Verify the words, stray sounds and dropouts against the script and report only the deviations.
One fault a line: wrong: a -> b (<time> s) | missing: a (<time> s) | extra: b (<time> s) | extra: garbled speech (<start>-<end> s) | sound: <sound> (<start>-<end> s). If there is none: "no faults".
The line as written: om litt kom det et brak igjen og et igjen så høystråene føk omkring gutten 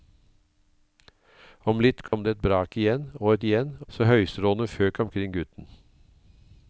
sound: dropout (2.1-2.1 s)